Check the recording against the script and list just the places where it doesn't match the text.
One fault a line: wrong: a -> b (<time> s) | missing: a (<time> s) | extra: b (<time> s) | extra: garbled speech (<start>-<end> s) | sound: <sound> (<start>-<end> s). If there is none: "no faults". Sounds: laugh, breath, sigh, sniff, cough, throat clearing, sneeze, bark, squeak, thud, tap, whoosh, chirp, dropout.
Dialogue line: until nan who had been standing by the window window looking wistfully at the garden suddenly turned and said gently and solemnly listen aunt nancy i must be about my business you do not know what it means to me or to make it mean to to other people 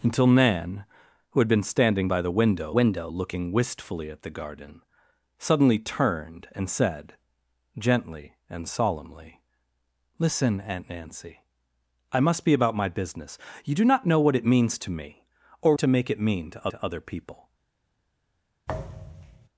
sound: thud (18.7-19.5 s)